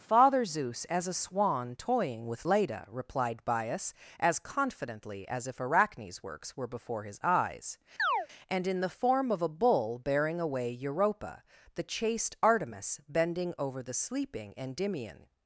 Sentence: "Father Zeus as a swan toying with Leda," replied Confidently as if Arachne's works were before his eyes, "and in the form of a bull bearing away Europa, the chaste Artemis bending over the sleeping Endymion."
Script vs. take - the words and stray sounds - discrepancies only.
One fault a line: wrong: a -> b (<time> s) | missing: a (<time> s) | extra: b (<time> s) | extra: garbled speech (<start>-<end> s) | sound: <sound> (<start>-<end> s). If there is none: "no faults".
extra: Bias as (3.5 s)
sound: chirp (8.0-8.3 s)